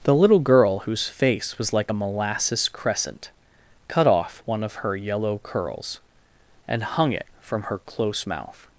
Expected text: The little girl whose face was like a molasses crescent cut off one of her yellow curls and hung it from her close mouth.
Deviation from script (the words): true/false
false